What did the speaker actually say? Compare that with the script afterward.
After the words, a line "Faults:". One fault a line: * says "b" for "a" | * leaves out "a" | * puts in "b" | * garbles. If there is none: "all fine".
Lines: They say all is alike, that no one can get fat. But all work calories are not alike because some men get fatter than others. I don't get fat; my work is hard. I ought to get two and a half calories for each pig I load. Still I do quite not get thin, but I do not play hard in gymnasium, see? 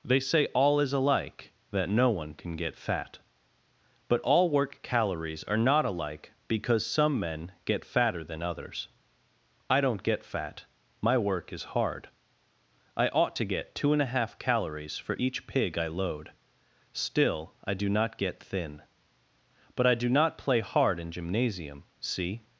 They say all is alike, that no one can get fat. But all work calories are not alike because some men get fatter than others. I don't get fat; my work is hard. I ought to get two and a half calories for each pig I load. Still I do not get thin, but I do not play hard in gymnasium, see?
Faults:
* leaves out "quite"